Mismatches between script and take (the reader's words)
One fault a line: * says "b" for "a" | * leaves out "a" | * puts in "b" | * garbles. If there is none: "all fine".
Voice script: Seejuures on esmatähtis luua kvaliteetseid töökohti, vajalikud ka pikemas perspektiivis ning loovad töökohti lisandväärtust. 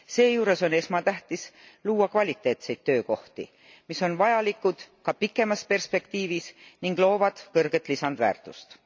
* puts in "mis on"
* says "kõrget" for "töökohti"